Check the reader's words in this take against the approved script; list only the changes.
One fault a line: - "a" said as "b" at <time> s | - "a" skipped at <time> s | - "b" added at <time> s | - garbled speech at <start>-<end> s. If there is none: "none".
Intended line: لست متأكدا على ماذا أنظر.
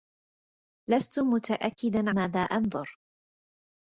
- "على" skipped at 2.1 s